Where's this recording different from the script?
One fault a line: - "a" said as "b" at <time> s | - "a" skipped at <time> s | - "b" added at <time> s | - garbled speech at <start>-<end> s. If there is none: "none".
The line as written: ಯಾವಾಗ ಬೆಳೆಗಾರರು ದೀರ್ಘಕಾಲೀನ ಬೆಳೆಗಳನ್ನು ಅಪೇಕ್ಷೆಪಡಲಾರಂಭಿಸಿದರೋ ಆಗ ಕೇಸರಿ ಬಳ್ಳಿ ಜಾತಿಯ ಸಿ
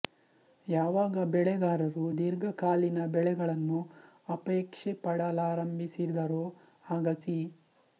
- "ಕೇಸರಿ ಬಳ್ಳಿ ಜಾತಿಯ" skipped at 7.1 s